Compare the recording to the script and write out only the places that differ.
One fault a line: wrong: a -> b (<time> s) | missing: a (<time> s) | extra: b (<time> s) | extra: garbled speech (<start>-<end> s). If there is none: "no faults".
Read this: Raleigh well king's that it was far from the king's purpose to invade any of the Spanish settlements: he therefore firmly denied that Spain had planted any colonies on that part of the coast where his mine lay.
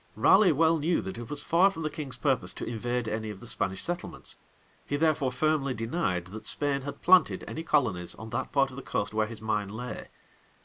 wrong: king's -> knew (0.8 s)